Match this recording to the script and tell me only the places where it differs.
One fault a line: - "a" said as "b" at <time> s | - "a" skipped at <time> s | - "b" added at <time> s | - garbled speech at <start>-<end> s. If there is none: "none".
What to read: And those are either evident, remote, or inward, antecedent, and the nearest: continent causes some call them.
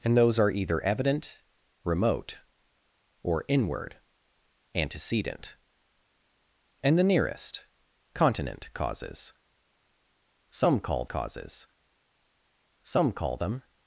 - "causes some call" added at 11.1 s